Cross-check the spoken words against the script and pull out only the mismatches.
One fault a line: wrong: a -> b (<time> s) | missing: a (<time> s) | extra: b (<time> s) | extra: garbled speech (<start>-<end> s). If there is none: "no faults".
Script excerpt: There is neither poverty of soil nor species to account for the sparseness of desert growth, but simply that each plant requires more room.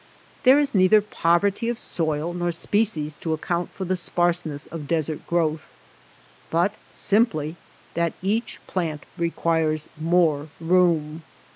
no faults